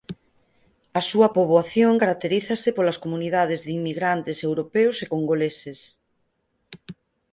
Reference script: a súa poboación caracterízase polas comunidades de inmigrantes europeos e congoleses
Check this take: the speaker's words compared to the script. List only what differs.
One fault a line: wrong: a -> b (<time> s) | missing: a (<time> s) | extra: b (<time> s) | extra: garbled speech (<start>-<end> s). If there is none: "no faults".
no faults